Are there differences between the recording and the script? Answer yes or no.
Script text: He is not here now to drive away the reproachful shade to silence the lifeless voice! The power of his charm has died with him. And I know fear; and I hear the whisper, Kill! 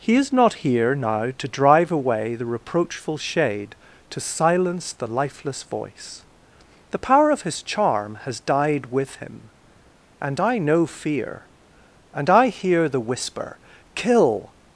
no